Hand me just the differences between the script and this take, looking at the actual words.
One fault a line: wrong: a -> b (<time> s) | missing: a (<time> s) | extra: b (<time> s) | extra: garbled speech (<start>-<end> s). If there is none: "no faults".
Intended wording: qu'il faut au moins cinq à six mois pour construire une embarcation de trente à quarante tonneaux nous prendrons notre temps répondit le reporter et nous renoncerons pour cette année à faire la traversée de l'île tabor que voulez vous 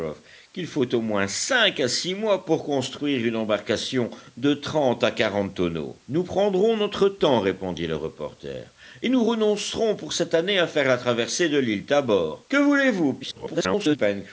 extra: garbled speech (13.2-14.0 s)